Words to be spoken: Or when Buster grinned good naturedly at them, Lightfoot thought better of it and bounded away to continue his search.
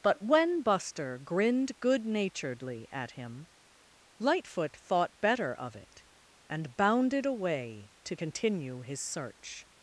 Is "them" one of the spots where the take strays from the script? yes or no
yes